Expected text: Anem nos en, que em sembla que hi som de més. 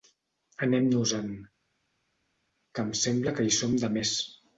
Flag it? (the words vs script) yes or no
no